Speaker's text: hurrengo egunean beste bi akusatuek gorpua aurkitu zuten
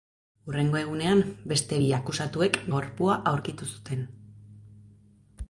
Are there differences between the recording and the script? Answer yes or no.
no